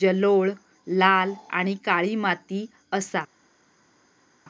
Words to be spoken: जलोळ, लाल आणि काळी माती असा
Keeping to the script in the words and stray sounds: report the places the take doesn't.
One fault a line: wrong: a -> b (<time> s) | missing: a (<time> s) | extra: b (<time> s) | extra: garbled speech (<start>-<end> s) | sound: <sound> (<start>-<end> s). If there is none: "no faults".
no faults